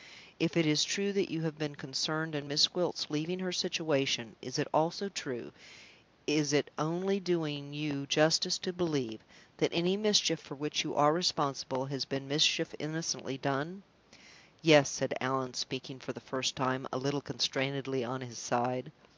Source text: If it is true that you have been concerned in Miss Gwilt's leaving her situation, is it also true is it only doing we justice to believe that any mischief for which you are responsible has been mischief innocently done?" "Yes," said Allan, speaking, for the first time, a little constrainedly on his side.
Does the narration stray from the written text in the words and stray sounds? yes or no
yes